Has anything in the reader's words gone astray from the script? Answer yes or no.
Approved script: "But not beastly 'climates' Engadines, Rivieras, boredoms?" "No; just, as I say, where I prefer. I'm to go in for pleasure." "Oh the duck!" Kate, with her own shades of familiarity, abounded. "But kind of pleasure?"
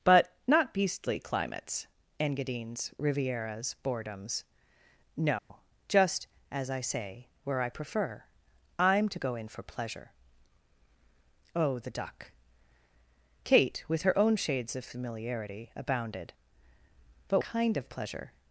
no